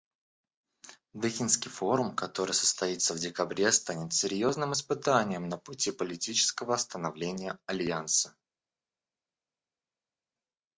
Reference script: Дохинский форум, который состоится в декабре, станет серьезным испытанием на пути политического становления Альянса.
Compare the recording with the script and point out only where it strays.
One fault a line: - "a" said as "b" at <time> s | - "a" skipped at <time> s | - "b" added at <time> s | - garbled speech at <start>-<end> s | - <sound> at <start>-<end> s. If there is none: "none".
none